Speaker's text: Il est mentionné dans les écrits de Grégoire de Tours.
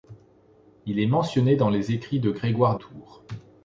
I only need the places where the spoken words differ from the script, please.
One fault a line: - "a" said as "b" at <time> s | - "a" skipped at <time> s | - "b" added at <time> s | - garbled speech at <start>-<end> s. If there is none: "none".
- "de" skipped at 2.8 s